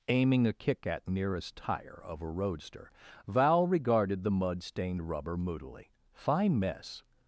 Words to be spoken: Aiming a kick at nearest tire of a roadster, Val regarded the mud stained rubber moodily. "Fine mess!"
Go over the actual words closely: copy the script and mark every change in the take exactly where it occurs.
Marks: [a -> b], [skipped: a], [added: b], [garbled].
Aiming a kick at nearest tire of a roadster, Val regarded the mud stained rubber moodily. "Fine mess!"